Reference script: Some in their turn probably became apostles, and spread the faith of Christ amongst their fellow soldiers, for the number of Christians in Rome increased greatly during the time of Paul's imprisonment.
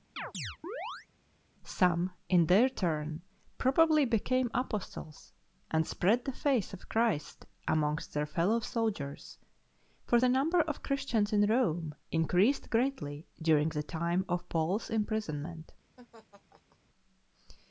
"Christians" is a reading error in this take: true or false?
false